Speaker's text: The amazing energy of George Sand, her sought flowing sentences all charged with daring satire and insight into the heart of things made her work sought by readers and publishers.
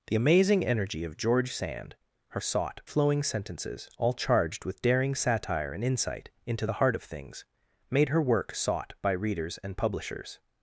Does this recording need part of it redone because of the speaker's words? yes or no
no